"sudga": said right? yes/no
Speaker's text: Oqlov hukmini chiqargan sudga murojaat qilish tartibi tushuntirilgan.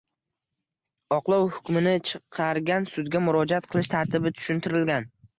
yes